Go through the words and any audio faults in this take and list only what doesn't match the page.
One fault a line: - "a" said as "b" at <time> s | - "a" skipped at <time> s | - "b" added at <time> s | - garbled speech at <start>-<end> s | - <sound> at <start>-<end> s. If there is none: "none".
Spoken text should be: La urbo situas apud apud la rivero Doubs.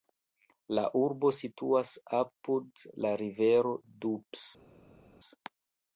- "apud" skipped at 2.9 s